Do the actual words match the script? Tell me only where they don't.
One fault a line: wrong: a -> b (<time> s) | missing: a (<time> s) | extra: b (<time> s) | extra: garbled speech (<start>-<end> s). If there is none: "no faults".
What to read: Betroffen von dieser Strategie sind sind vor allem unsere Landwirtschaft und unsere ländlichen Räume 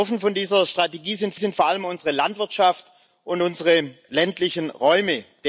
no faults